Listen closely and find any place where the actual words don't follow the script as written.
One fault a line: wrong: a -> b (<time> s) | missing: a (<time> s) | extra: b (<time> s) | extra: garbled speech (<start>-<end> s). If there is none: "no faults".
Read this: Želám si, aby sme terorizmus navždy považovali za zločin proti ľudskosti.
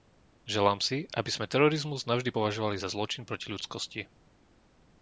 no faults